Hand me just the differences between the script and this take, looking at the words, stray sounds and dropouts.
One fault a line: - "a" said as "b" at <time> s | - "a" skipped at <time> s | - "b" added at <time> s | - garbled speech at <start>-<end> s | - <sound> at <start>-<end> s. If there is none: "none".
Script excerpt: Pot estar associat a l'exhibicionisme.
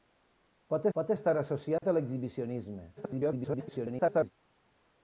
- "pot" added at 1.0 s
- dropout at 1.8-1.8 s
- garbled speech at 3.0-4.3 s